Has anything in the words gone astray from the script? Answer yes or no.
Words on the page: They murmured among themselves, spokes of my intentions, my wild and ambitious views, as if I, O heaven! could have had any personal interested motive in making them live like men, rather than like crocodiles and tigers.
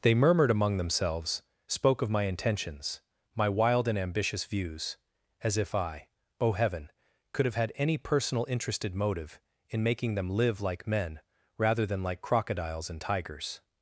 yes